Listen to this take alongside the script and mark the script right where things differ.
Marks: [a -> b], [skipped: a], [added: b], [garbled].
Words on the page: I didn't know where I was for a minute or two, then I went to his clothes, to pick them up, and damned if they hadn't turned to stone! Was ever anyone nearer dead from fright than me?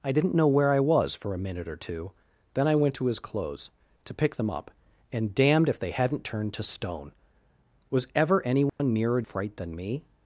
I didn't know where I was for a minute or two, then I went to his clothes, to pick them up, and damned if they hadn't turned to stone! Was ever anyone nearer [skipped: dead from] fright than me?